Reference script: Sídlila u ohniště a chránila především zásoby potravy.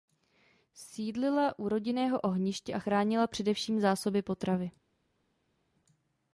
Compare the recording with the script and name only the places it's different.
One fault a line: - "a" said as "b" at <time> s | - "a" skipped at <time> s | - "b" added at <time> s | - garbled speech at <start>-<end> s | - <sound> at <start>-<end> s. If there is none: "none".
- "rodinného" added at 1.7 s